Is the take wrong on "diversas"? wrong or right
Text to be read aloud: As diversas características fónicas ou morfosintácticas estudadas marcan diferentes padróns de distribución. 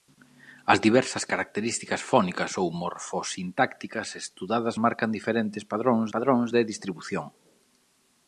right